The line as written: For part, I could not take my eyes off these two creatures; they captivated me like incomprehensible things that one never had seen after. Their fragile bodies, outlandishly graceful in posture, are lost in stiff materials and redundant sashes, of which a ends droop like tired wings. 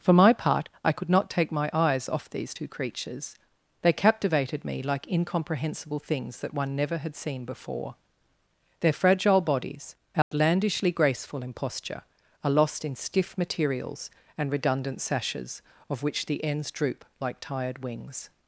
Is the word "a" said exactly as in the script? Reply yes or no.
no